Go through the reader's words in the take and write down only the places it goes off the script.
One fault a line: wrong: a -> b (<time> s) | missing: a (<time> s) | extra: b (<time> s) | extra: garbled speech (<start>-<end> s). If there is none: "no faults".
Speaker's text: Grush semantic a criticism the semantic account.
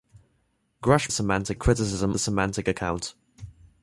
no faults